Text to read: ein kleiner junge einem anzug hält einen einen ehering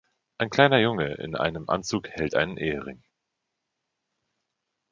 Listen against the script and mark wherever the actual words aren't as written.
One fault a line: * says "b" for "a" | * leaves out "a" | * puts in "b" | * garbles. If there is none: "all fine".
* puts in "in"
* leaves out "einen"